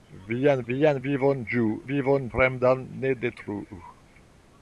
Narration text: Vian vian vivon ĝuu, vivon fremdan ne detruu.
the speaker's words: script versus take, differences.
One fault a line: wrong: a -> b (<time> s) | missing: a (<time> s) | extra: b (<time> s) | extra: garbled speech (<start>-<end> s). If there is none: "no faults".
no faults